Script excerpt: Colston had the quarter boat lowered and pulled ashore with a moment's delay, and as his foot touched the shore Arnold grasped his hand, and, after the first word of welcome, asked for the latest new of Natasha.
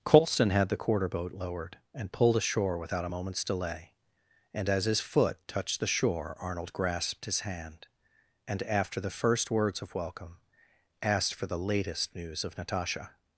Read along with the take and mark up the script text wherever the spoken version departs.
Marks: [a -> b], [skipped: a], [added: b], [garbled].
Colston had the quarter boat lowered and pulled ashore [with -> without] a moment's delay, and as his foot touched the shore Arnold grasped his hand, and, after the first [word -> words] of welcome, asked for the latest [new -> news] of Natasha.